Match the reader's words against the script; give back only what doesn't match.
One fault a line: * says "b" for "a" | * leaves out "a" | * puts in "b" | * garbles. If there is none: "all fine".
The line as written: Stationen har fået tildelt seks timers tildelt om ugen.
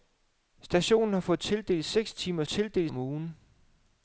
all fine